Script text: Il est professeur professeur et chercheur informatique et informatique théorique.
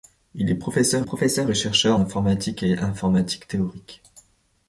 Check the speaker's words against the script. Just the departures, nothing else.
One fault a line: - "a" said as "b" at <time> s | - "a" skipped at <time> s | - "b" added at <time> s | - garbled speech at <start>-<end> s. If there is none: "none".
none